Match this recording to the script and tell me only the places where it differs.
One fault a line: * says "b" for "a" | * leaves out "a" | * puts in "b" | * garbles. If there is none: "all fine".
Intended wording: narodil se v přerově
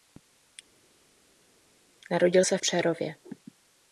all fine